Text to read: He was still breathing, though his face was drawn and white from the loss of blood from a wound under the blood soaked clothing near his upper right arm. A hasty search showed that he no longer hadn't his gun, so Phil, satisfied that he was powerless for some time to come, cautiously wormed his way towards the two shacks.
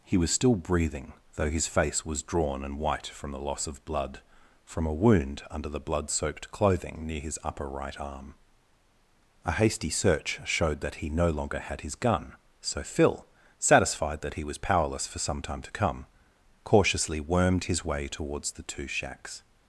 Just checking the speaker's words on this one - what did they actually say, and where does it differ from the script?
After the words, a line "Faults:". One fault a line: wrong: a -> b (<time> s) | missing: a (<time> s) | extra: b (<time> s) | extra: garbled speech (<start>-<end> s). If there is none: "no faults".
He was still breathing, though his face was drawn and white from the loss of blood from a wound under the blood soaked clothing near his upper right arm. A hasty search showed that he no longer had his gun, so Phil, satisfied that he was powerless for some time to come, cautiously wormed his way towards the two shacks.
Faults:
wrong: hadn't -> had (11.6 s)